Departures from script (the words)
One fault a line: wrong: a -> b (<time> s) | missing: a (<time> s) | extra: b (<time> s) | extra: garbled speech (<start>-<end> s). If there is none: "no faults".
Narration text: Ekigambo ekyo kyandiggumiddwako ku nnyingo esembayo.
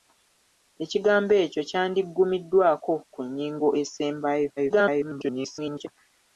extra: garbled speech (4.6-5.9 s)